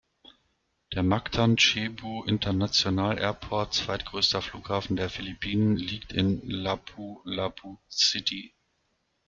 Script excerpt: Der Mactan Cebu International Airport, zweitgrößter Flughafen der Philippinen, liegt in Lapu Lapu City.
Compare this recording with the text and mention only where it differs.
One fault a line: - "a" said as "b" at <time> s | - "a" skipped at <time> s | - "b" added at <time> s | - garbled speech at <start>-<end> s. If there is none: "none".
none